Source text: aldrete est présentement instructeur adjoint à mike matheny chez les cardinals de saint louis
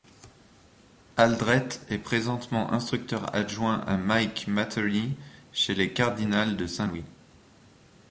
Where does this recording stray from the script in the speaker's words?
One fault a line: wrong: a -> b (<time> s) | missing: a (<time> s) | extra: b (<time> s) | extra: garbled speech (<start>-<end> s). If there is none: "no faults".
no faults